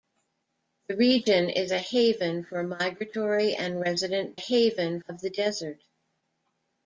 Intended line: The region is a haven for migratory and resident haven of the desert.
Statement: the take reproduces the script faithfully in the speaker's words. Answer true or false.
true